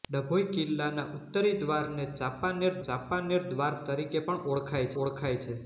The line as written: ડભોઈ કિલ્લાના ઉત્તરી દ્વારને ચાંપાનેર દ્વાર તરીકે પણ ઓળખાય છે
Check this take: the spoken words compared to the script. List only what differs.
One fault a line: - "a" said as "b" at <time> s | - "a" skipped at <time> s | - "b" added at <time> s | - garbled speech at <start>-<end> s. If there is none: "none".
- "ચાંપાનેર" added at 2.8 s
- "ઓળખાય" added at 5.0 s